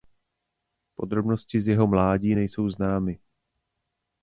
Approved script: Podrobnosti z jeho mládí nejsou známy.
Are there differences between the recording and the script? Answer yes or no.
no